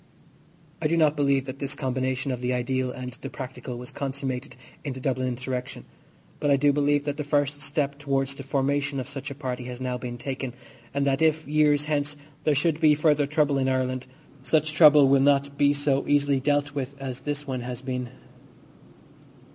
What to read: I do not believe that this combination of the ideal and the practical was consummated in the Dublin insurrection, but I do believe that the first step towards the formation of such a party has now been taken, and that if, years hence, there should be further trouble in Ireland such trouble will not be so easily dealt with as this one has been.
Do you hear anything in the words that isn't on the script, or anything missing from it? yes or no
no